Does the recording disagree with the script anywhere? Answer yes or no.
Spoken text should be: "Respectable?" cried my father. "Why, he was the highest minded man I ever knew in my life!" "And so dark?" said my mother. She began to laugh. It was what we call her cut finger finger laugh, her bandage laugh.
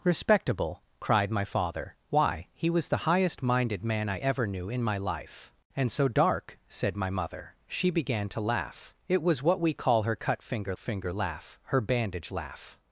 no